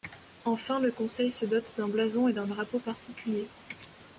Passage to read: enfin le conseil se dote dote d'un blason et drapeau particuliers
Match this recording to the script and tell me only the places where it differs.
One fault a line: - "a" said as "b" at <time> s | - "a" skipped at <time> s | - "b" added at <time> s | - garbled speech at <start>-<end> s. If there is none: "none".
- "dote" skipped at 1.8 s
- "d'un" added at 2.3 s